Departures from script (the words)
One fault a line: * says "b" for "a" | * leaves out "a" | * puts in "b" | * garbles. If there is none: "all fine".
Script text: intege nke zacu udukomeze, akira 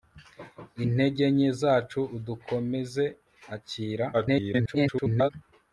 * garbles